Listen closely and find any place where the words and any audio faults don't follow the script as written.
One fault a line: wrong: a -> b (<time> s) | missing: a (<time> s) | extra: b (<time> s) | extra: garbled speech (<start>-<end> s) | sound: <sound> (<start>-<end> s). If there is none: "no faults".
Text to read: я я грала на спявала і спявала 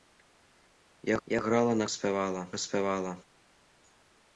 no faults